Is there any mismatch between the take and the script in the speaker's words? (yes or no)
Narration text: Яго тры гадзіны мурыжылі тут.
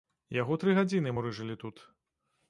no